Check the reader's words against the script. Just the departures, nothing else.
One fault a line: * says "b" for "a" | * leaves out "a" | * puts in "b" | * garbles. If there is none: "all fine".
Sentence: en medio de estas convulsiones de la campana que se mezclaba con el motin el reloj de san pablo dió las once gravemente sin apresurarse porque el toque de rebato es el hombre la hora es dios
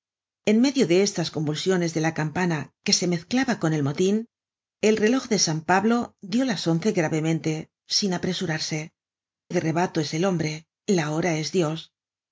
* leaves out "porque el toque"